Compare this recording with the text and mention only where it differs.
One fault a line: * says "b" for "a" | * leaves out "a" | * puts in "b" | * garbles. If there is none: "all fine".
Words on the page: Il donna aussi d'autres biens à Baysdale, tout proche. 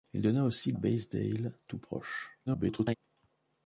* leaves out "d'autres biens à"
* garbles